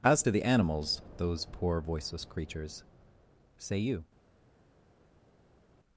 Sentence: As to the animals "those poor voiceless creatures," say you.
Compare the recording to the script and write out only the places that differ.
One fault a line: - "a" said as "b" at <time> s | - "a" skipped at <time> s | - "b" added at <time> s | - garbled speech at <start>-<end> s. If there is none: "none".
none